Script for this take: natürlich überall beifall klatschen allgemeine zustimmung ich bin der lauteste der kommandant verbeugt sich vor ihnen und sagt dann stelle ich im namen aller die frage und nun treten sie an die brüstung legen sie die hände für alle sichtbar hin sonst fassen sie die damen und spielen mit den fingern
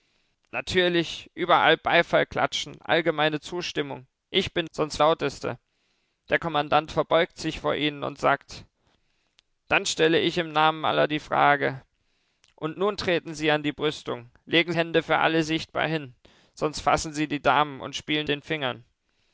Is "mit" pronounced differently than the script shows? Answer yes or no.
yes